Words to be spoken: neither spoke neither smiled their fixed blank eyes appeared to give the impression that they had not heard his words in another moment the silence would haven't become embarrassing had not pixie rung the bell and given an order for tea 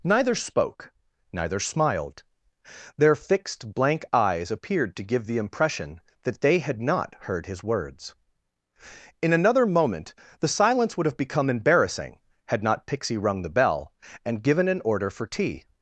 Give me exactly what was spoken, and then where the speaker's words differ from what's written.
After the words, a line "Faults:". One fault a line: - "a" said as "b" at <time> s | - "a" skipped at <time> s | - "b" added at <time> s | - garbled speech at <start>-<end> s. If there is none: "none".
neither spoke neither smiled their fixed blank eyes appeared to give the impression that they had not heard his words in another moment the silence would have become embarrassing had not pixie rung the bell and given an order for tea
Faults:
- "haven't" said as "have" at 11.1 s